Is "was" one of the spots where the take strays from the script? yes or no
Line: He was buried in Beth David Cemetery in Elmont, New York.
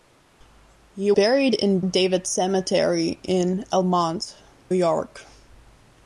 yes